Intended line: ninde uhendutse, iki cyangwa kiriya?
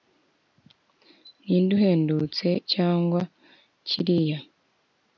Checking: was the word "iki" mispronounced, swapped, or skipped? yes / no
yes